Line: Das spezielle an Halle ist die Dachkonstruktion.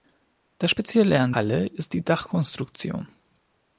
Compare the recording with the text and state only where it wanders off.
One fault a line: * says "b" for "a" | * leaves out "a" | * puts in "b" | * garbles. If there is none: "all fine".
all fine